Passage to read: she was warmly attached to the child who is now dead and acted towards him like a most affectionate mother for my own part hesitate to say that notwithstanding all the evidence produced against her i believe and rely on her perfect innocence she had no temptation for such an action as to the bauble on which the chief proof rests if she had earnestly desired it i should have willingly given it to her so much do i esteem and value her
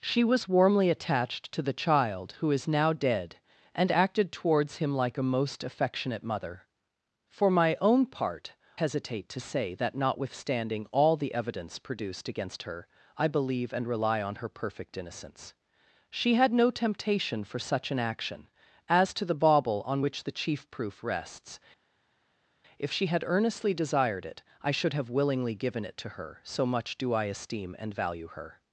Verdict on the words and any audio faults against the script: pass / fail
pass